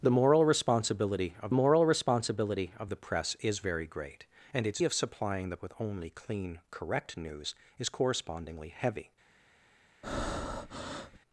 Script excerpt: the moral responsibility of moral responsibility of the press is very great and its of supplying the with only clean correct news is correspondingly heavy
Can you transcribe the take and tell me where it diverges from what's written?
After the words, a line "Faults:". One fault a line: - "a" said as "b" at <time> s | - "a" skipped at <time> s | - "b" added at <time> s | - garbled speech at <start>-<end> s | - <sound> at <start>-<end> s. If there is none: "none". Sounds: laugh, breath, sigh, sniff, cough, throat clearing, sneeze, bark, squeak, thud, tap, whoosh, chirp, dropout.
the moral responsibility of moral responsibility of the press is very great and its of supplying the with only clean correct news is correspondingly heavy
Faults:
- breath at 10.0-11.2 s